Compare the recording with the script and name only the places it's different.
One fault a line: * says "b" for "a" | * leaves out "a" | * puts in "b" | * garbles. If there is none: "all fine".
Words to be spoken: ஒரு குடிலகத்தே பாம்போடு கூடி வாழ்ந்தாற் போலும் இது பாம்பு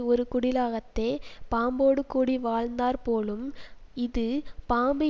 all fine